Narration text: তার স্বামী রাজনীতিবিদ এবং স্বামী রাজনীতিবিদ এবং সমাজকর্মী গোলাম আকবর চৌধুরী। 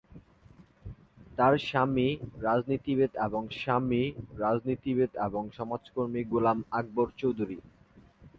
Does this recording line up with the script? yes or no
yes